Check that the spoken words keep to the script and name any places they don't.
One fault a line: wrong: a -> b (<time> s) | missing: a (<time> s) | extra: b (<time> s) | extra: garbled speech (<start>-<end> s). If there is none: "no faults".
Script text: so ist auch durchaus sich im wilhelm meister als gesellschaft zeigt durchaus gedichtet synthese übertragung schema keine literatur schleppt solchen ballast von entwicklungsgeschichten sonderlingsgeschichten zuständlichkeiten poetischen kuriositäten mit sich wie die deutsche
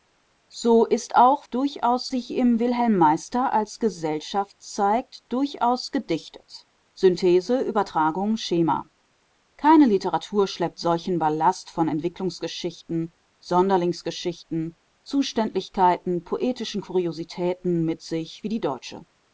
no faults